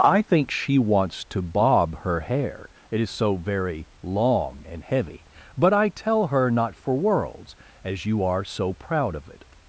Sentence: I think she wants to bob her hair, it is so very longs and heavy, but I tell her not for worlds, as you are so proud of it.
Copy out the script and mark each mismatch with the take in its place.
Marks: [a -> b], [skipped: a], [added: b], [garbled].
I think she wants to bob her hair, it is so very [longs -> long] and heavy, but I tell her not for worlds, as you are so proud of it.